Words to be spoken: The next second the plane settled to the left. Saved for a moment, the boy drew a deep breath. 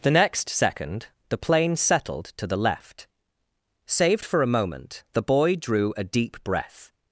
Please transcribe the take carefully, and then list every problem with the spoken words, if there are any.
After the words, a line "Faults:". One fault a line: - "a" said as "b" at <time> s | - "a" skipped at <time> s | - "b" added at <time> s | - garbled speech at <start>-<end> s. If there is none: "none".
The next second the plane settled to the left. Saved for a moment, the boy drew a deep breath.
Faults:
none